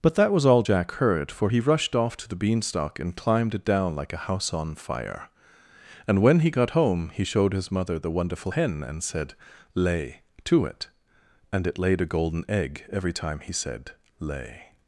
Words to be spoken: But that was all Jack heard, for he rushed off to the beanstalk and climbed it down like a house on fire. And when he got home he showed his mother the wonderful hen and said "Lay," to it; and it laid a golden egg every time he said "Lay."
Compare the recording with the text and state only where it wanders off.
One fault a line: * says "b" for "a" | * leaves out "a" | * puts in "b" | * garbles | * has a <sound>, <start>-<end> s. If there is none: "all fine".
all fine